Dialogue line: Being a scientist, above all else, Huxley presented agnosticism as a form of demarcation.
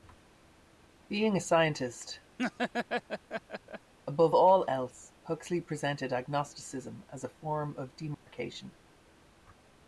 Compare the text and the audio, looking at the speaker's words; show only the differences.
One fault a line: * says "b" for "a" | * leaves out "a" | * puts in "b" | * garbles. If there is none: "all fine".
all fine